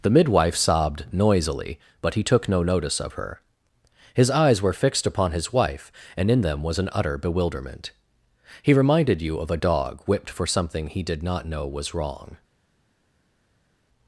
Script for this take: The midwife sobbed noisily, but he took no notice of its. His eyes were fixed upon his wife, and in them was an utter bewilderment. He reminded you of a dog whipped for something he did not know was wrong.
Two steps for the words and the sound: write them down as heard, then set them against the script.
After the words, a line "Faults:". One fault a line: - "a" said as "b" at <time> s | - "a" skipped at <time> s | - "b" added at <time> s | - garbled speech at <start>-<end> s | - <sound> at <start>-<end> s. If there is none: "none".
The midwife sobbed noisily, but he took no notice of her. His eyes were fixed upon his wife, and in them was an utter bewilderment. He reminded you of a dog whipped for something he did not know was wrong.
Faults:
- "its" said as "her" at 3.1 s